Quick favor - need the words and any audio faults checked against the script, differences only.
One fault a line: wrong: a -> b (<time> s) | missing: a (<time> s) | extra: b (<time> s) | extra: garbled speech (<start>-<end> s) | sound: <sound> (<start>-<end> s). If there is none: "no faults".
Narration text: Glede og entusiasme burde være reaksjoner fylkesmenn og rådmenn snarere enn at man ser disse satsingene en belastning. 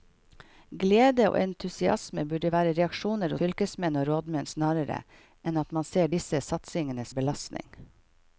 no faults